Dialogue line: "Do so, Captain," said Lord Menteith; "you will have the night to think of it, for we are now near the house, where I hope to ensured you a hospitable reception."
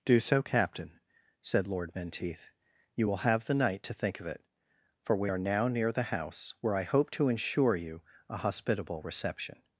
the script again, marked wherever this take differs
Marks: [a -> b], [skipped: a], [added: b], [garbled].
"Do so, Captain," said Lord Menteith; "you will have the night to think of it, for we are now near the house, where I hope to [ensured -> ensure] you a hospitable reception."